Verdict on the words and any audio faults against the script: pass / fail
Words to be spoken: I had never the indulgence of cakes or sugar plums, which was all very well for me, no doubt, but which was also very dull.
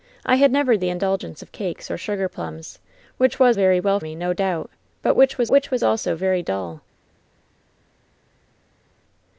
fail